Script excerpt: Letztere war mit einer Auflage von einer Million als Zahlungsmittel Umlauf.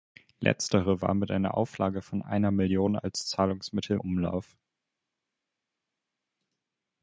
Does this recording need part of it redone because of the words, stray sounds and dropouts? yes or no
no